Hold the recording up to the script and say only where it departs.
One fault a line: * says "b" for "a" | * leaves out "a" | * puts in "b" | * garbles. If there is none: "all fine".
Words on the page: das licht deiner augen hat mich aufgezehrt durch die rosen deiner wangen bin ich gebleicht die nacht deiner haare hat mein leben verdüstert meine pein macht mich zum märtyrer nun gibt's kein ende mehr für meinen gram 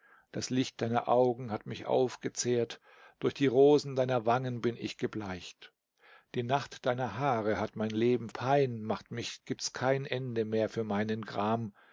* leaves out "verdüstert meine"
* leaves out "zum märtyrer nun"